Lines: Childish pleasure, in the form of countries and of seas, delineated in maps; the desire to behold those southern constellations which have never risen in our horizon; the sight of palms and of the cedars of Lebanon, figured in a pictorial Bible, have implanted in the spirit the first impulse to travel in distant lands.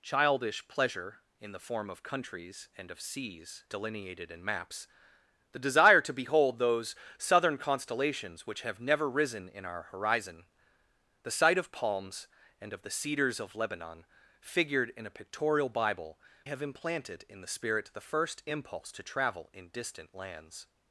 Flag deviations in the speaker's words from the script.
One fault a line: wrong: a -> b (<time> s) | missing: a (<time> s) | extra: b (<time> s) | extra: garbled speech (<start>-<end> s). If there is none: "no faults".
no faults